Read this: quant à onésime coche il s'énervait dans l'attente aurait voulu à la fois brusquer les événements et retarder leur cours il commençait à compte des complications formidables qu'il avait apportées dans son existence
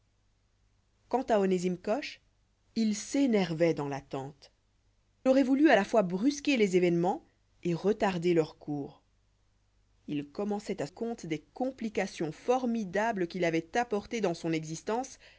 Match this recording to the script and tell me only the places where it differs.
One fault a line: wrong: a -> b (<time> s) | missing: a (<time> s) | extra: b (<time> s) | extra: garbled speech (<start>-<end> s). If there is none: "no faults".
no faults